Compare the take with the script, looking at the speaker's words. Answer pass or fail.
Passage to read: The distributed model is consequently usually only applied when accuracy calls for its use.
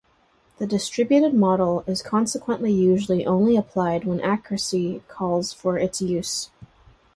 pass